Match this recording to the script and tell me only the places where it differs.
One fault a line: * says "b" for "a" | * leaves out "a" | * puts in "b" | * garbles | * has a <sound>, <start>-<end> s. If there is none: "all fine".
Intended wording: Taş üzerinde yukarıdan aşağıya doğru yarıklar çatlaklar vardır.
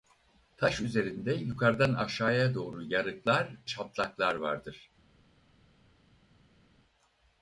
all fine